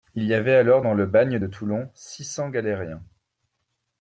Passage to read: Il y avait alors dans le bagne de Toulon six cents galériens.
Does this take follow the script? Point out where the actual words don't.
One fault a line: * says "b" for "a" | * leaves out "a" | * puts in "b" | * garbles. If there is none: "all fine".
all fine